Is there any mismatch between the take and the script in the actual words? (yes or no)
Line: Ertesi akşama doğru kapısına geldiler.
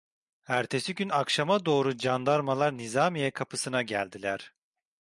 yes